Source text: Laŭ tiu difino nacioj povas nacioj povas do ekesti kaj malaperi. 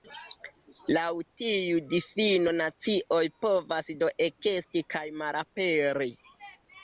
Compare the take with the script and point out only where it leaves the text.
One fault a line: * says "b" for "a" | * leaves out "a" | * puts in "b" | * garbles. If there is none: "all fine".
* leaves out "nacioj povas"